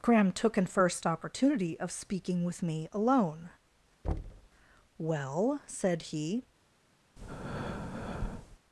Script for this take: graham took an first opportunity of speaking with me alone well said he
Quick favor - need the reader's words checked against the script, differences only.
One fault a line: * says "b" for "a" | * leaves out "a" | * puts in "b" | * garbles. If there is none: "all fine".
all fine